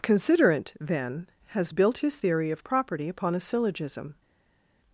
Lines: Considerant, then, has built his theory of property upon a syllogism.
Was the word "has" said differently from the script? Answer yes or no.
no